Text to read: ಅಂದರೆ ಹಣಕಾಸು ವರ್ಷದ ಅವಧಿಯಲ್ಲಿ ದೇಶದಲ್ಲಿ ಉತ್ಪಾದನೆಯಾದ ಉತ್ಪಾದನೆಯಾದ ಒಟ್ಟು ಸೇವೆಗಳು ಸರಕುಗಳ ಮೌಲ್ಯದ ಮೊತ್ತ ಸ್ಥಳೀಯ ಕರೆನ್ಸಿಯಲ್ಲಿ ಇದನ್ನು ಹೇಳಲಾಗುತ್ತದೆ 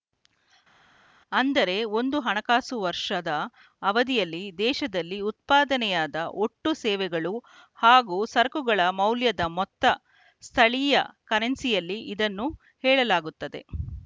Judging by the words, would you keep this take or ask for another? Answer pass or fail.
fail